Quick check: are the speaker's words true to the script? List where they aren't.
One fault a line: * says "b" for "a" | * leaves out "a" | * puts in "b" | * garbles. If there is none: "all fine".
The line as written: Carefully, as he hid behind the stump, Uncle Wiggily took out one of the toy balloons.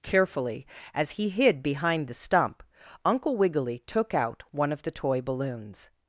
all fine